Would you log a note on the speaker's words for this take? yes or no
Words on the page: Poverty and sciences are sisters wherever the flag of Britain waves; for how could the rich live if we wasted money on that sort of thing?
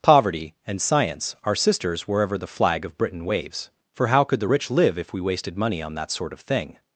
yes